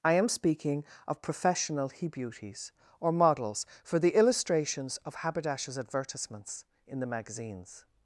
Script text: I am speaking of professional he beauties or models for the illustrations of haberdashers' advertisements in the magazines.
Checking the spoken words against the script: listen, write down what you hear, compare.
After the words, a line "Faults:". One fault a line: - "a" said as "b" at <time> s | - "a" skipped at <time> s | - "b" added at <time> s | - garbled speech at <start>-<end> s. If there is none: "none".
I am speaking of professional he beauties or models for the illustrations of haberdashers' advertisements in the magazines.
Faults:
none